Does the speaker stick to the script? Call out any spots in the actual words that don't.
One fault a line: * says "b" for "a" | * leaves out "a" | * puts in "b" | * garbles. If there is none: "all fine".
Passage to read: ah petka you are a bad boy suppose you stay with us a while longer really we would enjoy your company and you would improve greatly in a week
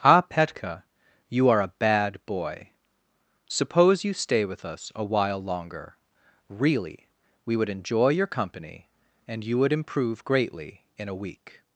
all fine